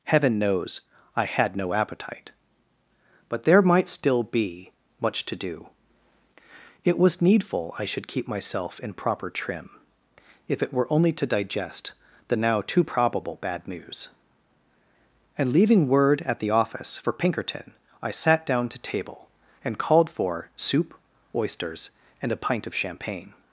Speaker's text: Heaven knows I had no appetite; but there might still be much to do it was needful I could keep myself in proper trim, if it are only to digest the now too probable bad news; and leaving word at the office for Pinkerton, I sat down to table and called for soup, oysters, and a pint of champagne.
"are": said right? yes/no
no